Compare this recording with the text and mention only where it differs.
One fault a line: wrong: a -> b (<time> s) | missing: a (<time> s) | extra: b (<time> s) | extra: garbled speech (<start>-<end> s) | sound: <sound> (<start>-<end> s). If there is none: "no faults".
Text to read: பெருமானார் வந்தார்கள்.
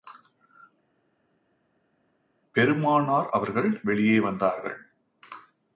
extra: அவர்கள் வெளியே (3.3 s)